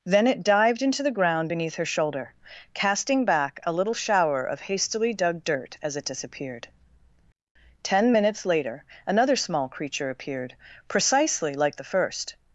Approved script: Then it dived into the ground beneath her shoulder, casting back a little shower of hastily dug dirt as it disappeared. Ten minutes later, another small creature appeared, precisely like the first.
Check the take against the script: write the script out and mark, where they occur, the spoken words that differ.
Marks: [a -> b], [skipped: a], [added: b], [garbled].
Then it dived into the ground beneath her shoulder, casting back a little shower of hastily dug dirt as it disappeared. Ten minutes later, another small creature appeared, precisely like the first.